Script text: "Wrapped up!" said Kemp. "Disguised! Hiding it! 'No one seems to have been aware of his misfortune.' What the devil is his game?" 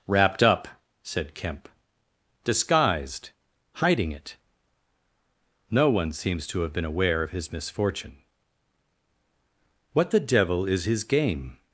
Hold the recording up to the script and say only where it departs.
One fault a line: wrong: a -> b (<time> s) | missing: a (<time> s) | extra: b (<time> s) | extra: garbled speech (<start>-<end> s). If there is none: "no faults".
no faults